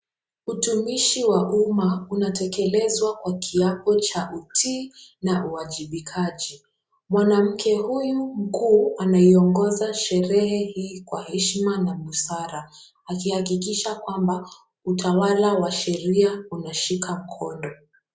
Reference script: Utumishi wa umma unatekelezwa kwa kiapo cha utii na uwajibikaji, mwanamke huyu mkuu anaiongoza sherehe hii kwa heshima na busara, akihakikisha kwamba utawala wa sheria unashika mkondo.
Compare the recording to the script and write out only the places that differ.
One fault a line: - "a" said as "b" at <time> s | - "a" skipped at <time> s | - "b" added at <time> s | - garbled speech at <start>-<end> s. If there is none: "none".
none